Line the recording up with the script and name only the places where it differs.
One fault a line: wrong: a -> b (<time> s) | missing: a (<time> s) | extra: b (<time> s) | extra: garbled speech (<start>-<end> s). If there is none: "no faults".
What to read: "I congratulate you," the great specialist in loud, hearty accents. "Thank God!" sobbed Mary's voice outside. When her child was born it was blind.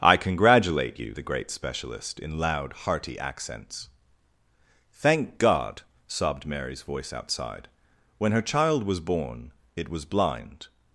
no faults